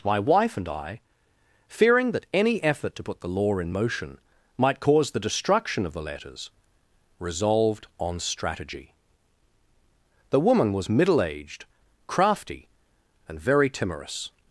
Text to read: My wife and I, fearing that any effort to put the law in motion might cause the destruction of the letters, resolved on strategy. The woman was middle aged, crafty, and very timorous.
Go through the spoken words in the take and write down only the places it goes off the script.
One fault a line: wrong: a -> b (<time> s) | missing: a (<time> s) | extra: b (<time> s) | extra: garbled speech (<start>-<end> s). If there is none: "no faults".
no faults